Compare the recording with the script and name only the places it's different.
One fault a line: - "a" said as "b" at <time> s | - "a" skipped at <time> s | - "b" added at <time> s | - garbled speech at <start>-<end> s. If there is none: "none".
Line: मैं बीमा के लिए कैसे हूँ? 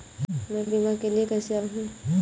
none